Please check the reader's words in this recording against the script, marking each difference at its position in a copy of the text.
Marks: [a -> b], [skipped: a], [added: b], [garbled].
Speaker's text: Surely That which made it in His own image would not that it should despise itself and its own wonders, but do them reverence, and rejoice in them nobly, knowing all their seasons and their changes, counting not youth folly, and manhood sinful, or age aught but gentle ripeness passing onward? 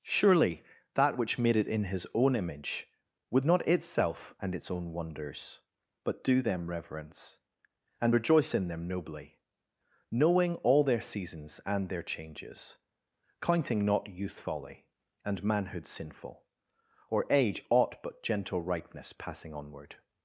Surely That which made it in His own image would not [skipped: that it should despise] itself and its own wonders, but do them reverence, and rejoice in them nobly, knowing all their seasons and their changes, counting not youth folly, and manhood sinful, or age aught but gentle ripeness passing onward?